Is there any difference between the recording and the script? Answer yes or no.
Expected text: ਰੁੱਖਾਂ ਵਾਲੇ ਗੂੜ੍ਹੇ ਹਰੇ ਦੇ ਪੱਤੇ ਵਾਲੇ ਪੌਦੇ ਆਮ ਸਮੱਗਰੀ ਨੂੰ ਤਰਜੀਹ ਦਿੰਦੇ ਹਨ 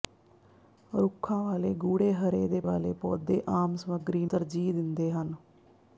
yes